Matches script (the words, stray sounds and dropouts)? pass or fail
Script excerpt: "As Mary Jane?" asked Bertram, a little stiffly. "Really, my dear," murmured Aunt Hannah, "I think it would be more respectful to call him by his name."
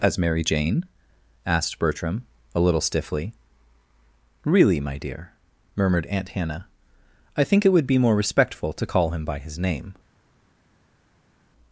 pass